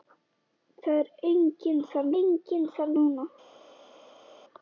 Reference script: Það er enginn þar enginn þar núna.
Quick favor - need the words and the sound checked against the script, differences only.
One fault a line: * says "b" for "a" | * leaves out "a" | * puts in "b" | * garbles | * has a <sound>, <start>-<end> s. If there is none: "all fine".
all fine